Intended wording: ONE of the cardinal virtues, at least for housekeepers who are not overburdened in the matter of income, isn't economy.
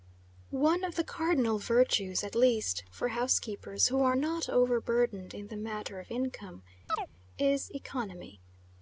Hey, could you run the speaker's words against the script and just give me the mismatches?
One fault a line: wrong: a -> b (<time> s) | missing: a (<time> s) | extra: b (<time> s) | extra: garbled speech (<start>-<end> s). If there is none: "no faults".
wrong: isn't -> is (7.4 s)